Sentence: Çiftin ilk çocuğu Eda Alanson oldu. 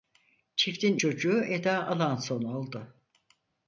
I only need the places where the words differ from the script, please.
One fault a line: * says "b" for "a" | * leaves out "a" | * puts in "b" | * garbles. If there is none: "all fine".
* leaves out "ilk"